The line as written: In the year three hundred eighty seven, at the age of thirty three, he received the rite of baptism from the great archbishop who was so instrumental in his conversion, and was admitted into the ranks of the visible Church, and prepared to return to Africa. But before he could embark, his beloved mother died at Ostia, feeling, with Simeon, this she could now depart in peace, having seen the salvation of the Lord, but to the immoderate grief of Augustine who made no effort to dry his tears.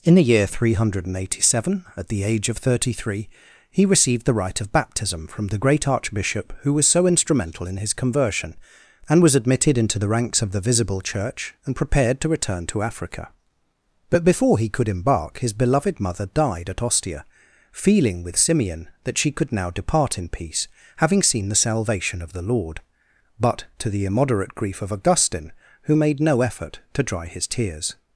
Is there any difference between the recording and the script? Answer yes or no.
yes